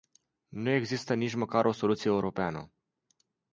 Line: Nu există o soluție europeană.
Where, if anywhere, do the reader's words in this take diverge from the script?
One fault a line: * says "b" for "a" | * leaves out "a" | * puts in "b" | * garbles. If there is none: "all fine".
* puts in "nici măcar"